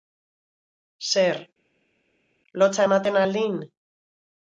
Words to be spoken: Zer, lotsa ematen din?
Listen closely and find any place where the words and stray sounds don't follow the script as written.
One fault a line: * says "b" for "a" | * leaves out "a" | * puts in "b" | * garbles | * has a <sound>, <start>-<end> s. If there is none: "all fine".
* puts in "al"